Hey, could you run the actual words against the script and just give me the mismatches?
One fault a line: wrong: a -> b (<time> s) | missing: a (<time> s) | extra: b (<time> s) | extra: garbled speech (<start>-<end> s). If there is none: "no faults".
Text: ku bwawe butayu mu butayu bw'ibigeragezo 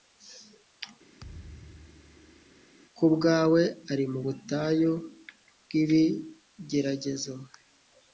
wrong: butayu -> ari (3.9 s)